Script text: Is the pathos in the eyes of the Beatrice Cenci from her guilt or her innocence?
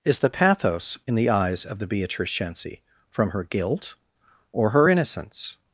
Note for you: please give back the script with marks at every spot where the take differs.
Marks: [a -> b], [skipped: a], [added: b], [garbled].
Is the pathos in the eyes of the Beatrice Cenci from her guilt or her innocence?